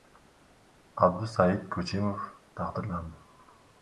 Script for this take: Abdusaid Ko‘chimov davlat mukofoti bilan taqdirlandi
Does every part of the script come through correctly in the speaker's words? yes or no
no